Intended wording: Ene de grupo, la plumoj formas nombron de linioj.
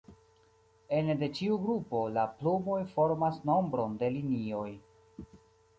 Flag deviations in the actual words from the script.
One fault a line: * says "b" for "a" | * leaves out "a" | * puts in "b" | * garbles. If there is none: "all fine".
* puts in "ĉiu"